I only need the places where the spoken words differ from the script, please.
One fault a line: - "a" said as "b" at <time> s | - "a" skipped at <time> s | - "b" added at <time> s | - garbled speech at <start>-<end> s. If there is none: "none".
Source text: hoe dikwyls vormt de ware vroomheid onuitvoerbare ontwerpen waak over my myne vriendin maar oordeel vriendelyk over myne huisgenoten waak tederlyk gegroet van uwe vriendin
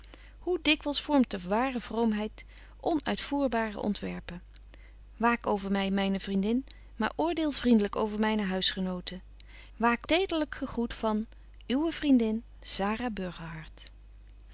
none